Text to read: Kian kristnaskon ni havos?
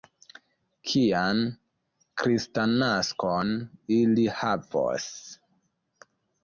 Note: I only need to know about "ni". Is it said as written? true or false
false